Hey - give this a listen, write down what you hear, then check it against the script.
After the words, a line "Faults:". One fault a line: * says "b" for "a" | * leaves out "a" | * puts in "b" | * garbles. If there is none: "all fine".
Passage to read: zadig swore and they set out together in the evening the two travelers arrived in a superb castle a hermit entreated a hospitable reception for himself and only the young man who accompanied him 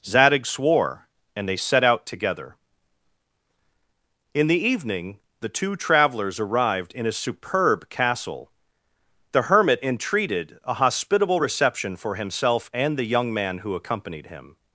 zadig swore and they set out together in the evening the two travelers arrived in a superb castle the hermit entreated a hospitable reception for himself and the young man who accompanied him
Faults:
* says "the" for "a"
* leaves out "only"